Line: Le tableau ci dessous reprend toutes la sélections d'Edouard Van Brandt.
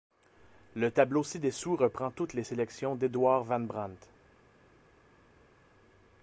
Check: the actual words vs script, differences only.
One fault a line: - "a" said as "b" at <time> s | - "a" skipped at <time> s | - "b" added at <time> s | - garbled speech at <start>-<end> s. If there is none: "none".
- "la" said as "les" at 2.3 s